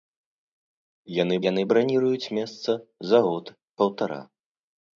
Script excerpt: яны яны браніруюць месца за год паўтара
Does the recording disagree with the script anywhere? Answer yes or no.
no